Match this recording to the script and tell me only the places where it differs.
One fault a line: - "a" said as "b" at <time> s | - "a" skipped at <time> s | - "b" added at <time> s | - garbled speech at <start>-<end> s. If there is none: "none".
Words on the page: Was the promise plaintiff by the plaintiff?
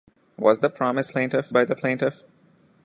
none